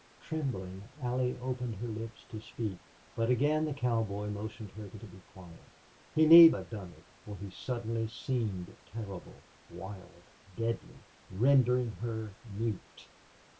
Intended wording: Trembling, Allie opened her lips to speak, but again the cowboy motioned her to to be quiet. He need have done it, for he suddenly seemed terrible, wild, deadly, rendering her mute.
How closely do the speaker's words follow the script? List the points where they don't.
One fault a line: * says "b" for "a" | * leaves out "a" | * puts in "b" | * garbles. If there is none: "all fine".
all fine